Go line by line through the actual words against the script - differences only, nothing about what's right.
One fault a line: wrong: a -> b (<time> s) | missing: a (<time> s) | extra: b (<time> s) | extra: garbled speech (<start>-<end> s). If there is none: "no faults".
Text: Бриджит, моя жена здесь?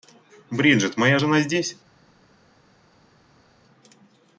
no faults